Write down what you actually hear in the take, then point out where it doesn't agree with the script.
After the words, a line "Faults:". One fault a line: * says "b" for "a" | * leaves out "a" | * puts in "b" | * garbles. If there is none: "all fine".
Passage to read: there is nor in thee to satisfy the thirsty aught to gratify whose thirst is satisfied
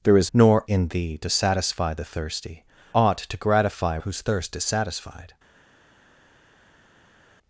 there is nor in thee to satisfy the thirsty aught to gratify whose thirst is satisfied
Faults:
all fine